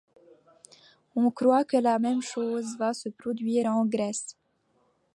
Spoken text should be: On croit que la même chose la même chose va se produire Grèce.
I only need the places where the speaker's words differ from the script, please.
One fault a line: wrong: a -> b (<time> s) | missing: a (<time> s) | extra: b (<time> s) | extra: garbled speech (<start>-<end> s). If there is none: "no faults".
missing: la même chose (2.8 s)
extra: en (3.7 s)